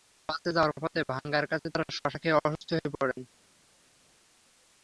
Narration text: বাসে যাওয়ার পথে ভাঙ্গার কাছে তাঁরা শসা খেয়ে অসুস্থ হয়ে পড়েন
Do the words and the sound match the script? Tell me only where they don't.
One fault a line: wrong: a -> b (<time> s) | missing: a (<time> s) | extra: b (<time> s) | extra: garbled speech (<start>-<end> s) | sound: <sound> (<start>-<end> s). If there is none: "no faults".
no faults